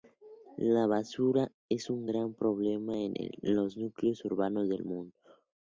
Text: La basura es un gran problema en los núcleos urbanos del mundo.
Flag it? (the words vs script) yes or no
no